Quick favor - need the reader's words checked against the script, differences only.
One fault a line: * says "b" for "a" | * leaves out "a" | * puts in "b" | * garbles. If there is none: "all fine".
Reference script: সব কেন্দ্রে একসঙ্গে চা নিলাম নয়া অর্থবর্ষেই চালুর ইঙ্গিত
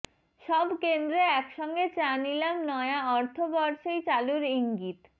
all fine